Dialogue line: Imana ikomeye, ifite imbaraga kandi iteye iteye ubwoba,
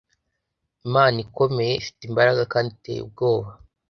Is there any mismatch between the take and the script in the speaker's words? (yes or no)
yes